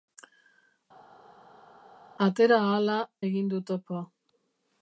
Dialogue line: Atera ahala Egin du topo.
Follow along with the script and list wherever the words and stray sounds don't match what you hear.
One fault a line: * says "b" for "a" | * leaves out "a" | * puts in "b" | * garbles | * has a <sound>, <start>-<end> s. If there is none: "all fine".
all fine